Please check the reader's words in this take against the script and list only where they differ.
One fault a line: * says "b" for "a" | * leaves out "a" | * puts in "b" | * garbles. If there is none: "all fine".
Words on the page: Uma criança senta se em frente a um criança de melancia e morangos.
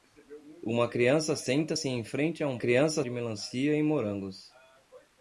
all fine